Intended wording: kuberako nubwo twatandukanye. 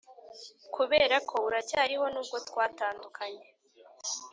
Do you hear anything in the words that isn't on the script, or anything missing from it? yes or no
yes